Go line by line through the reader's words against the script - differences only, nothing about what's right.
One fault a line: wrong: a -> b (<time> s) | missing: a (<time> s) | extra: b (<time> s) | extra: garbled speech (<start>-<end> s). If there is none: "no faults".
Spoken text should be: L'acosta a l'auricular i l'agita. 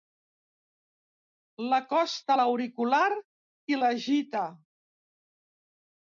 no faults